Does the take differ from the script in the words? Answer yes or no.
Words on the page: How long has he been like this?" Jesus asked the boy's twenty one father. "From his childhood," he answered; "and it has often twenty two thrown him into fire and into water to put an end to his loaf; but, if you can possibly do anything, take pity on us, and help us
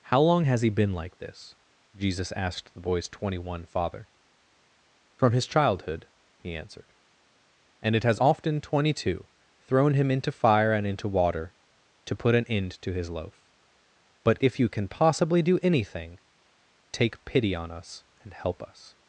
no